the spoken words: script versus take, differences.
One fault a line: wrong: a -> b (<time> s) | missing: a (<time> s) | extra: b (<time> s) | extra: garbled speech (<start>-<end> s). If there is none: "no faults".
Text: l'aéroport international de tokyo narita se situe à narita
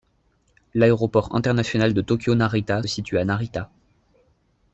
missing: se (2.8 s)